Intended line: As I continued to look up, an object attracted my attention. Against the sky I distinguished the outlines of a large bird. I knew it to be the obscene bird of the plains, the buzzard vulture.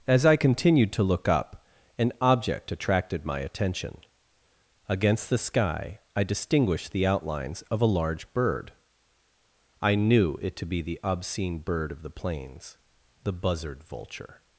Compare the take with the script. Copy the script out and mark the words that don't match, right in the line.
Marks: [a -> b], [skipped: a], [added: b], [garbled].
As I continued to look up, an object attracted my attention. Against the sky I distinguished the outlines of a large bird. I knew it to be the obscene bird of the plains, the buzzard vulture.